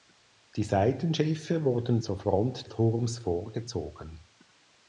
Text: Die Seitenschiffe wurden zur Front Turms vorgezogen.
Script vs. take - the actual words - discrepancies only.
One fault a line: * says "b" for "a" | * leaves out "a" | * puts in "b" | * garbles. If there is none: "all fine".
all fine